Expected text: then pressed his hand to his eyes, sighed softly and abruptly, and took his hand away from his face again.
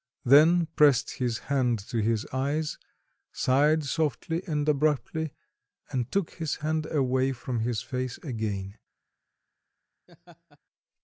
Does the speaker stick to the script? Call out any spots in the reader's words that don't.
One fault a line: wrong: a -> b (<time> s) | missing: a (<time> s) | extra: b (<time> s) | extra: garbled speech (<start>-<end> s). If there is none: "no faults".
no faults